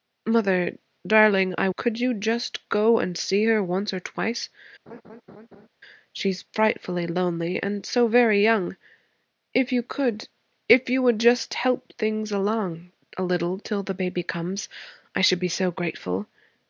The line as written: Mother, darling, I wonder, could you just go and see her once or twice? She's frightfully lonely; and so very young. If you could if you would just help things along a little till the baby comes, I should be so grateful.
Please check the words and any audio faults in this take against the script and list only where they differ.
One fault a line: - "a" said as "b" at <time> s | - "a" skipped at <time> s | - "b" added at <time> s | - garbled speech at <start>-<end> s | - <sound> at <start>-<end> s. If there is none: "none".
- "wonder" skipped at 1.7 s
- laugh at 4.9-5.7 s